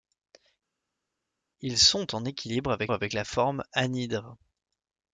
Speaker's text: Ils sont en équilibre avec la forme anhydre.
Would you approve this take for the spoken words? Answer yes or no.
no